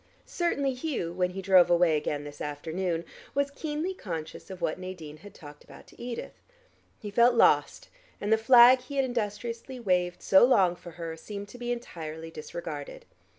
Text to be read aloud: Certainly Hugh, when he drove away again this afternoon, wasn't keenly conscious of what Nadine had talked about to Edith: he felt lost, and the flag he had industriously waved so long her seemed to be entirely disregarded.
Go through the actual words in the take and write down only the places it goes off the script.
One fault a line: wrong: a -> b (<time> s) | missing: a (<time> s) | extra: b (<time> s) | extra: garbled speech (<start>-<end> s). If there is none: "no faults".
wrong: wasn't -> was (3.4 s)
extra: for (10.7 s)